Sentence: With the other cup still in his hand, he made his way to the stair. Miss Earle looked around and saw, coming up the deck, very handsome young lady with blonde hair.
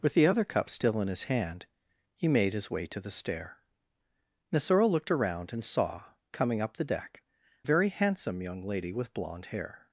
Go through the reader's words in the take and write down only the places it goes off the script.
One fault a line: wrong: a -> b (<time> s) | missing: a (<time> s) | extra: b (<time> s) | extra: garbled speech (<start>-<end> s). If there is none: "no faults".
no faults